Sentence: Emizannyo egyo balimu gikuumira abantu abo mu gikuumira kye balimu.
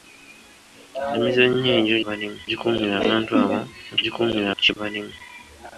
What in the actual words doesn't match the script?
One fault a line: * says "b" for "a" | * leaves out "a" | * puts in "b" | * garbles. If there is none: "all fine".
all fine